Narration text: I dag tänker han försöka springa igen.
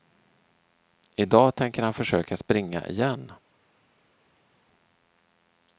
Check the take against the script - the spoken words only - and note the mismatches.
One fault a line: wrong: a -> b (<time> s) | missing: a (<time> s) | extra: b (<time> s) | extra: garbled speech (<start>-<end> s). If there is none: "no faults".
no faults